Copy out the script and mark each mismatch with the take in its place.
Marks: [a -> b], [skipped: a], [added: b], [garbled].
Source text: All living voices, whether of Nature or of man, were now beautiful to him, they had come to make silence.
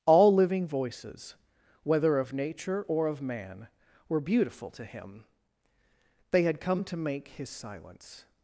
All living voices, whether of Nature or of man, were [skipped: now] beautiful to him, they had come to make [added: his] silence.